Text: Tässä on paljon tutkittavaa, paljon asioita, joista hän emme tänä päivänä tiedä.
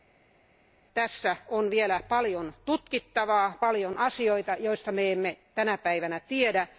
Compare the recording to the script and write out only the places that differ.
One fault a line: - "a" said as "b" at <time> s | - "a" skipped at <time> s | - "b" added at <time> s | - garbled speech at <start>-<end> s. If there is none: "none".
- "vielä" added at 1.7 s
- "hän" said as "me" at 4.9 s